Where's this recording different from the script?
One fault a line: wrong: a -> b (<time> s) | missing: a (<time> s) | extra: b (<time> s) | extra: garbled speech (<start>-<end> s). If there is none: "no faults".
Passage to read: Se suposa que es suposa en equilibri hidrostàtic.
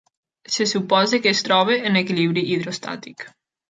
wrong: suposa -> troba (1.5 s)